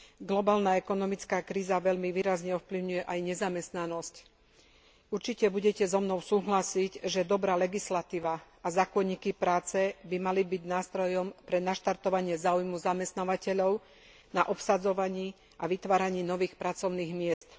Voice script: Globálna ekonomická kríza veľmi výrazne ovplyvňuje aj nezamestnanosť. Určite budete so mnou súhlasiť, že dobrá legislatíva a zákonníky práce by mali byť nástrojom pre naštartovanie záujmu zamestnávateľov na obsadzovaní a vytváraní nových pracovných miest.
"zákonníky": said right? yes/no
yes